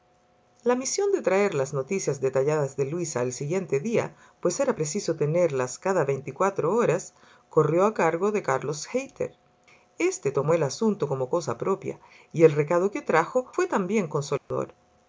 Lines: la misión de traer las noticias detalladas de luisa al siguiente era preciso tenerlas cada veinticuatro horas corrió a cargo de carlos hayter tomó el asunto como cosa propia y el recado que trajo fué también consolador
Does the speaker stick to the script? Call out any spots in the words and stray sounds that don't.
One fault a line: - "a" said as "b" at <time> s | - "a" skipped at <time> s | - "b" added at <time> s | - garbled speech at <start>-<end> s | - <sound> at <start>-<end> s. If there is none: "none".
- "día pues" added at 3.8 s
- "este" added at 10.0 s
- dropout at 14.4-14.5 s